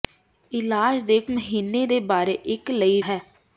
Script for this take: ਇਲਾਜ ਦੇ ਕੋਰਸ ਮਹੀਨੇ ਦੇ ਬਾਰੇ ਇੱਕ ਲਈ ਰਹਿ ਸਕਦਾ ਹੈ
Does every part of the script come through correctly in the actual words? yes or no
no